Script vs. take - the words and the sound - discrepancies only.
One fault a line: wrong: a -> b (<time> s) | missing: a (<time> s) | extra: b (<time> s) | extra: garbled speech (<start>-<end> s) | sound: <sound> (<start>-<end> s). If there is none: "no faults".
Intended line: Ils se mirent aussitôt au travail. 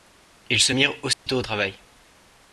sound: dropout (1.1-1.3 s)